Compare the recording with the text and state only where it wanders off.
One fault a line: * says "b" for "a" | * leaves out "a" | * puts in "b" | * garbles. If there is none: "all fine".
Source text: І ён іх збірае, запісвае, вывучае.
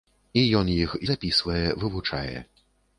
* leaves out "збірае"